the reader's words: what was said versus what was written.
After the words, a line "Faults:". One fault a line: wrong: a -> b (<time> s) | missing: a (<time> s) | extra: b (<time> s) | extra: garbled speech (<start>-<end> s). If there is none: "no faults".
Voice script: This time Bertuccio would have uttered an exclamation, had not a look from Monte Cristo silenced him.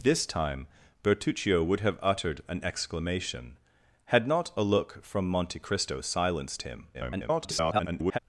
This time Bertuccio would have uttered an exclamation, had not a look from Monte Cristo silenced him. [garbled]
Faults:
extra: garbled speech (6.9-8.2 s)